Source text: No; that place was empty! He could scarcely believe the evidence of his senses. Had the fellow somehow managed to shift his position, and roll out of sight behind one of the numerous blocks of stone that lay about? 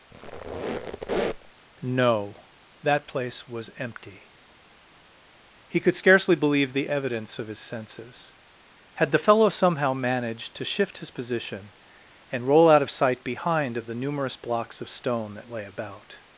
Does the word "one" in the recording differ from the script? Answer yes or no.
yes